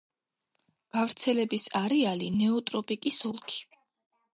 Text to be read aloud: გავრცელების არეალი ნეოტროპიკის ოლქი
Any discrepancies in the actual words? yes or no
no